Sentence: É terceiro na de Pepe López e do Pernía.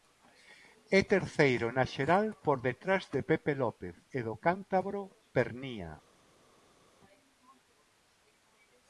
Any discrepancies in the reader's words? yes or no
yes